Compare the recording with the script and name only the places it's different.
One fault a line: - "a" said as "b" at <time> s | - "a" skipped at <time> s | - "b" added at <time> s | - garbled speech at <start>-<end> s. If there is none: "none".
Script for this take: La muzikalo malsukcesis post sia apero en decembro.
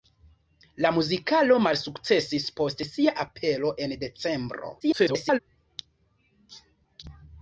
- garbled speech at 4.8-5.4 s